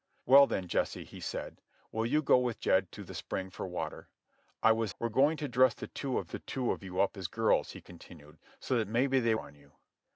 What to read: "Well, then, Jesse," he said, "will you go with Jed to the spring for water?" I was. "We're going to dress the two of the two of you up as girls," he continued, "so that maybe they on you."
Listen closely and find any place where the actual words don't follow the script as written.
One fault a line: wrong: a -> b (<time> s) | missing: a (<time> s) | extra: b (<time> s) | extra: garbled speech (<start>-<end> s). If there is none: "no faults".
no faults